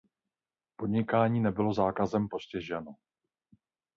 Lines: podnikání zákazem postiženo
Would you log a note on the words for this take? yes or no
yes